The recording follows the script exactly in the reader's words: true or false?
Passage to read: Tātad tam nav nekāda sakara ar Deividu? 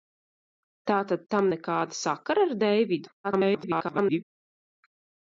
false